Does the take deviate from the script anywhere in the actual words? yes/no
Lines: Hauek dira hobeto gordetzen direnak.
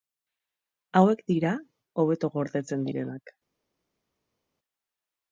no